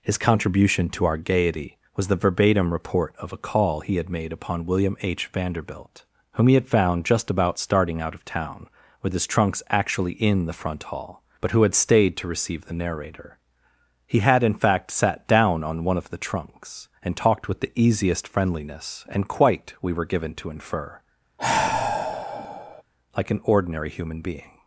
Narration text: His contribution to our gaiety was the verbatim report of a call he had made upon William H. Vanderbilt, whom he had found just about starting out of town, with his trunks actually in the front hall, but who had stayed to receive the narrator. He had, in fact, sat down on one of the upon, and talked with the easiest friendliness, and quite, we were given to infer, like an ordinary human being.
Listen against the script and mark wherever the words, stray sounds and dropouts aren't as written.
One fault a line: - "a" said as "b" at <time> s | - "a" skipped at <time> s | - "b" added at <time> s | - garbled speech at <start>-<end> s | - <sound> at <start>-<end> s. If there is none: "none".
- "upon" said as "trunks" at 16.2 s
- sigh at 21.4-22.8 s